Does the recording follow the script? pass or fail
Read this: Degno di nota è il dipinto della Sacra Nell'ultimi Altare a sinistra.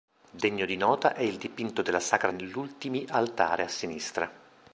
pass